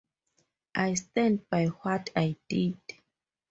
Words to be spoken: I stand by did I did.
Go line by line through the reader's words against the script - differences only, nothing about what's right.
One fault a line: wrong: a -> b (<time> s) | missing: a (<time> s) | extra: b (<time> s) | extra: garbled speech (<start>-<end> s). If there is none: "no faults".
wrong: did -> what (1.7 s)